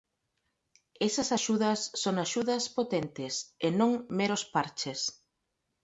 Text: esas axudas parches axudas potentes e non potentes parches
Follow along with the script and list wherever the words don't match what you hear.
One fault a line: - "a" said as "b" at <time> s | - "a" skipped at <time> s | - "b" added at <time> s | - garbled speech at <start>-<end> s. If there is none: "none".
- "parches" said as "son" at 2.0 s
- "potentes" said as "meros" at 4.2 s